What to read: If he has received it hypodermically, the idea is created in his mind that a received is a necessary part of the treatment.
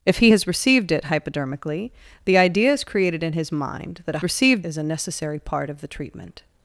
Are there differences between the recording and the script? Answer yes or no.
no